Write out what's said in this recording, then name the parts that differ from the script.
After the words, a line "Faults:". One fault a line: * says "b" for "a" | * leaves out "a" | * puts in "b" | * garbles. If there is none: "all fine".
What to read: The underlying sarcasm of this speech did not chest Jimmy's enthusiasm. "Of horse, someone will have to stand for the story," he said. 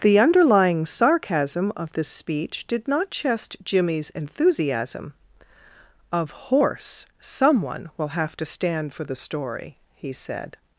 The underlying sarcasm of this speech did not chest Jimmy's enthusiasm. "Of horse, someone will have to stand for the story," he said.
Faults:
all fine